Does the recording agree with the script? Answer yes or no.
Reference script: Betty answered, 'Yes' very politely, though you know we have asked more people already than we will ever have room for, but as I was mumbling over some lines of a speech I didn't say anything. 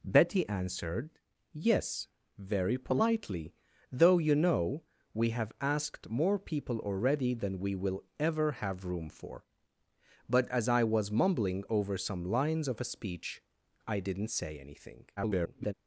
no